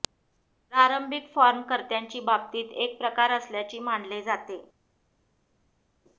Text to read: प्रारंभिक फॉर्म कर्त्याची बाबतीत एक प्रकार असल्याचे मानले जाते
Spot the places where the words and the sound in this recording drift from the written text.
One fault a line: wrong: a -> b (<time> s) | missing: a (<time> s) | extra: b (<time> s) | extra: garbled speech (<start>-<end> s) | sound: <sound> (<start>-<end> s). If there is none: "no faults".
no faults